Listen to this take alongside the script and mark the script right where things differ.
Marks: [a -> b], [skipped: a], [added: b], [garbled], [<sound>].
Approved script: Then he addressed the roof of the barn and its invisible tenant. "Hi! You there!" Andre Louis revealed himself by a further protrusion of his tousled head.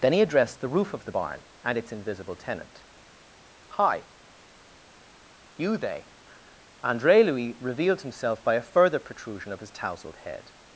Then he addressed the roof of the barn and its invisible tenant. "Hi! You [there!" -> they] Andre Louis revealed himself by a further protrusion of his tousled head.